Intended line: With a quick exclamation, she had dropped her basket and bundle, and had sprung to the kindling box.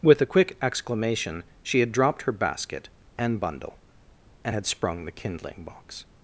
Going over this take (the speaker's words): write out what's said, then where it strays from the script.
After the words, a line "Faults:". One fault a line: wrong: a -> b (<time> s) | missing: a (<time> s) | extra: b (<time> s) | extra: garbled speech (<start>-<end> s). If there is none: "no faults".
With a quick exclamation, she had dropped her basket and bundle, and had sprung the kindling box.
Faults:
missing: to (5.0 s)